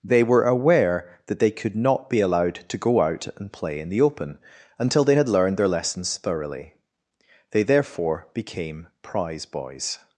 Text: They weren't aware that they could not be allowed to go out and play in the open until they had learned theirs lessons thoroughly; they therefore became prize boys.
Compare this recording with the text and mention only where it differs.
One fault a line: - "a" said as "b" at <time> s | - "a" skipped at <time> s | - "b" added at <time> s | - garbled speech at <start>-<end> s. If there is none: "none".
- "weren't" said as "were" at 0.2 s
- "theirs" said as "their" at 5.6 s